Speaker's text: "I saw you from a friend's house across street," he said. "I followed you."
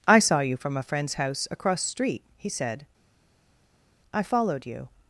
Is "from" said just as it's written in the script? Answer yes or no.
yes